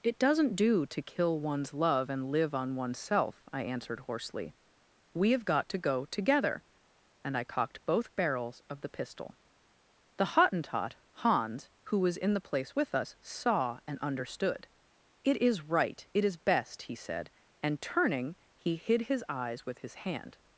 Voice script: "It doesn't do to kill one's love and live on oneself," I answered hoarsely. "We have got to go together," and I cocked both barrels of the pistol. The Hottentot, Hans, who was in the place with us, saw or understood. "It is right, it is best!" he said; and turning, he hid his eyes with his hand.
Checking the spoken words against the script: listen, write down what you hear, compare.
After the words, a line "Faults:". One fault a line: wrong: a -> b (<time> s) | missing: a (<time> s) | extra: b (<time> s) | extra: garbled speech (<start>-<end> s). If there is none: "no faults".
"It doesn't do to kill one's love and live on oneself," I answered hoarsely. "We have got to go together," and I cocked both barrels of the pistol. The Hottentot, Hans, who was in the place with us, saw and understood. "It is right, it is best!" he said; and turning, he hid his eyes with his hand.
Faults:
wrong: or -> and (13.9 s)